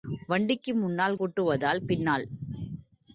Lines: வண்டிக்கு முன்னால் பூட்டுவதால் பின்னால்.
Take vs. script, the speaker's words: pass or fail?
pass